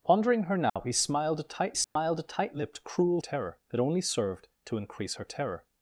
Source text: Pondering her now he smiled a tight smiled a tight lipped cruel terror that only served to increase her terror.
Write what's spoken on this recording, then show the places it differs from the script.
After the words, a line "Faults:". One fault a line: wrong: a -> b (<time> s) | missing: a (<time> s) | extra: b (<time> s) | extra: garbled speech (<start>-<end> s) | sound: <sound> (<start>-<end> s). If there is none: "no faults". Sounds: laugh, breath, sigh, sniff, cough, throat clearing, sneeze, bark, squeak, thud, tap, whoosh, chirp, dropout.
Pondering her now he smiled a tight smiled a tight lipped cruel terror that only served to increase her terror.
Faults:
sound: dropout (0.7-0.8 s)
sound: dropout (1.8-2.0 s)